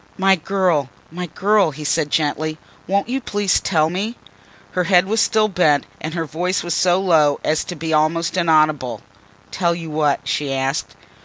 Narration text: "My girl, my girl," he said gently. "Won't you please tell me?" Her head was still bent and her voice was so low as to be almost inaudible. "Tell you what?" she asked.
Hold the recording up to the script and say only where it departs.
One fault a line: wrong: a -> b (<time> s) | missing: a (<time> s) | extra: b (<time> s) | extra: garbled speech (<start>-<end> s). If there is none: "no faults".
no faults